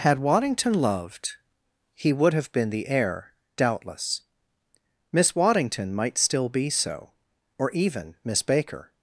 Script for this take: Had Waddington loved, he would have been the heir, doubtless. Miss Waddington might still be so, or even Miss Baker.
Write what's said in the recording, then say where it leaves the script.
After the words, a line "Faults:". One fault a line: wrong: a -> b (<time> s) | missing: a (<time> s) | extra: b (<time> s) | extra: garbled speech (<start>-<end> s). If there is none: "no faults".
Had Waddington loved, he would have been the heir, doubtless. Miss Waddington might still be so, or even Miss Baker.
Faults:
no faults